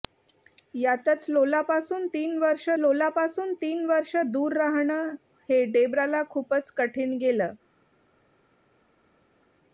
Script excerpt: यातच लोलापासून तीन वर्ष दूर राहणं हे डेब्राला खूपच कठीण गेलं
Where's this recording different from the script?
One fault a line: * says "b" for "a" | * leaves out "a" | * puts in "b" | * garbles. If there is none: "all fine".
* puts in "लोलापासून तीन वर्ष"